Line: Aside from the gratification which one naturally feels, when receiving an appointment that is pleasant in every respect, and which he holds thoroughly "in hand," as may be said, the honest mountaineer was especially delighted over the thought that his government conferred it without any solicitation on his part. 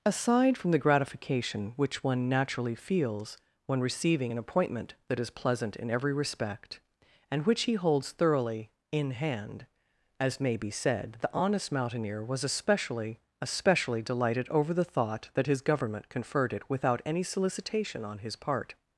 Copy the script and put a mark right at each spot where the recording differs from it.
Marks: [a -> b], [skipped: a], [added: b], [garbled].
Aside from the gratification which one naturally feels, when receiving an appointment that is pleasant in every respect, and which he holds thoroughly "in hand," as may be said, the honest mountaineer was especially [added: especially] delighted over the thought that his government conferred it without any solicitation on his part.